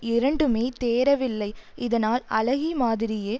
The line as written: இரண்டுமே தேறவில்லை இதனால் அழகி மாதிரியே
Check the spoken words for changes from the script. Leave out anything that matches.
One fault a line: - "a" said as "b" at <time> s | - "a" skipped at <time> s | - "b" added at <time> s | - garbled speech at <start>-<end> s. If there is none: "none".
none